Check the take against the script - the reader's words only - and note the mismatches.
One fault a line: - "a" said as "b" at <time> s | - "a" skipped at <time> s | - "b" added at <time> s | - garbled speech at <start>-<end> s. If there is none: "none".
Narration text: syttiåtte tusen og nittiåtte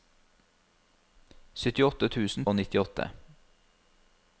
none